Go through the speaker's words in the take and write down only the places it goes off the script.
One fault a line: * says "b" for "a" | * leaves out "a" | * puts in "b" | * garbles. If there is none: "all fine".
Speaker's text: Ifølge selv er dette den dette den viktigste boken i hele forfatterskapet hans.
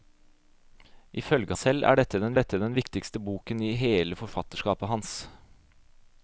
all fine